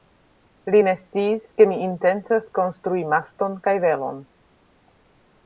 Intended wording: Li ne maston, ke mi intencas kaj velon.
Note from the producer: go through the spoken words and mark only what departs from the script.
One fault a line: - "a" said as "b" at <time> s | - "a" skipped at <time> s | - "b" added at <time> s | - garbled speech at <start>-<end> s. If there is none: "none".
- "maston" said as "sciis" at 1.0 s
- "konstrui maston" added at 2.6 s